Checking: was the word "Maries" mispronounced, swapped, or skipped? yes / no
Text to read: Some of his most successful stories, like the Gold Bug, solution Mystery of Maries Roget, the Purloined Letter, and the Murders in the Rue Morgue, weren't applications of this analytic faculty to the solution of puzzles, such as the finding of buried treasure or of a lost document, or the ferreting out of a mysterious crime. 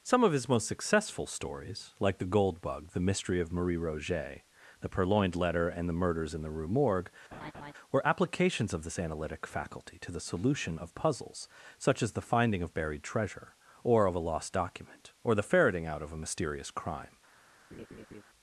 yes